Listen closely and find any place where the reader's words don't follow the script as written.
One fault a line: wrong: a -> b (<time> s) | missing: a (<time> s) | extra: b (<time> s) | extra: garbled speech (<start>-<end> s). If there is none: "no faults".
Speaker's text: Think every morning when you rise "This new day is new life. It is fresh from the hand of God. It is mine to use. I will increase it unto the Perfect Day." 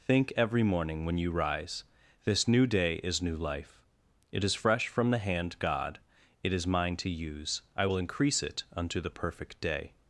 missing: of (5.6 s)